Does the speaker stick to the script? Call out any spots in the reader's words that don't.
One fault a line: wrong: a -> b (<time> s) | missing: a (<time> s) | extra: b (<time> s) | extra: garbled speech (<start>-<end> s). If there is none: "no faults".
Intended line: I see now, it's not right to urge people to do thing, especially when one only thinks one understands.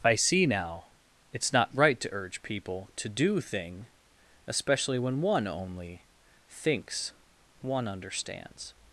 no faults